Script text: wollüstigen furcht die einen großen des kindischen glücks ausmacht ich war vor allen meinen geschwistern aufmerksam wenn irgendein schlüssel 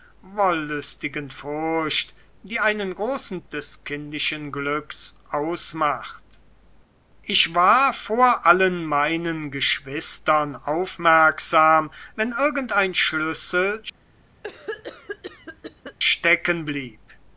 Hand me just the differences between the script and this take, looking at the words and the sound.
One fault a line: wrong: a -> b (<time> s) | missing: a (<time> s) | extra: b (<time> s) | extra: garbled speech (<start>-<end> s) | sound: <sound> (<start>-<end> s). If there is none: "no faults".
sound: cough (14.4-16.0 s)